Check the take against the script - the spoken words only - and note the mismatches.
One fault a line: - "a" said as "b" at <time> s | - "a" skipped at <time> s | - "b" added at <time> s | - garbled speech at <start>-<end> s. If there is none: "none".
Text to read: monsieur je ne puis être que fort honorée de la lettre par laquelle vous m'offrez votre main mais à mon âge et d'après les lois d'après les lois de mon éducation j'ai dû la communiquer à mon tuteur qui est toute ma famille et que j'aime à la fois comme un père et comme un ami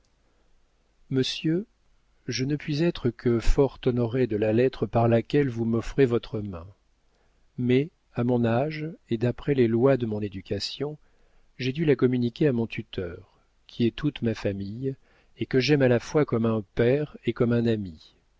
- "d'après les lois" skipped at 10.0 s